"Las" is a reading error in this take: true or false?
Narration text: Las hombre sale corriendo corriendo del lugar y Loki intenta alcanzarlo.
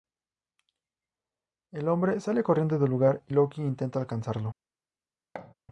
true